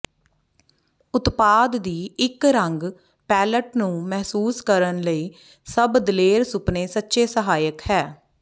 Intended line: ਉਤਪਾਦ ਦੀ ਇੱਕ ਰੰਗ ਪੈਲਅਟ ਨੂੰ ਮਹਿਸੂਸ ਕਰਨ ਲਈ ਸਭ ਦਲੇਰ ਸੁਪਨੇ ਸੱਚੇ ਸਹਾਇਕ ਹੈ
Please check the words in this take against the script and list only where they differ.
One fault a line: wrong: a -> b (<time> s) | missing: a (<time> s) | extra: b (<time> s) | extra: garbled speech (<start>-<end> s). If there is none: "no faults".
no faults